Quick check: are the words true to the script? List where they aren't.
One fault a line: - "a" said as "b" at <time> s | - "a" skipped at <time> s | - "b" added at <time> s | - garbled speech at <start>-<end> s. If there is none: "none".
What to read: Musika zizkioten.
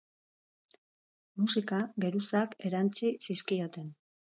- "geruzak erantsi" added at 2.1 s